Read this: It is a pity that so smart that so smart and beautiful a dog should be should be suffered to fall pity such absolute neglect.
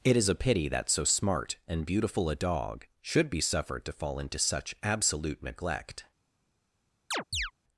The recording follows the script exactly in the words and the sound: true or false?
false